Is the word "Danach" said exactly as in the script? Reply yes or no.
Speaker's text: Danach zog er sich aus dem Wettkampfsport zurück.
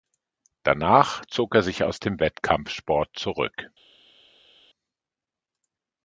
yes